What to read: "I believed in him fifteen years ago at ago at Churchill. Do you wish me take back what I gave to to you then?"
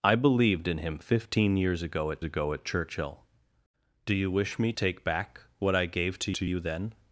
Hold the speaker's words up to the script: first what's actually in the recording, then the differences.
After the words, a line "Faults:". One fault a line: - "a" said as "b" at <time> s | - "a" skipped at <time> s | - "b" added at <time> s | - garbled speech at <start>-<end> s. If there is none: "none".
"I believed in him fifteen years ago at ago at Churchill. Do you wish me take back what I gave to to you then?"
Faults:
none